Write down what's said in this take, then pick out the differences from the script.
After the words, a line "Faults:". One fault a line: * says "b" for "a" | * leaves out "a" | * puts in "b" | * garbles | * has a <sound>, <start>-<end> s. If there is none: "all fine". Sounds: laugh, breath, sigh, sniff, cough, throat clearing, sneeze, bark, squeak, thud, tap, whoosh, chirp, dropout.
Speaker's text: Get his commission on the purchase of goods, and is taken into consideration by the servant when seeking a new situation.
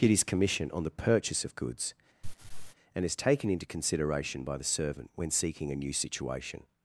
Get his commission on the purchase of goods, and is taken into consideration by the servant when seeking a new situation.
Faults:
* has a laugh, 2.2-2.7 s